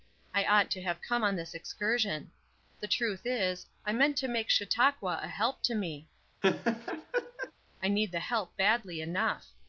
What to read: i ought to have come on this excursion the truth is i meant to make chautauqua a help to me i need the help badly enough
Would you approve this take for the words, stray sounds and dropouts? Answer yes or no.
no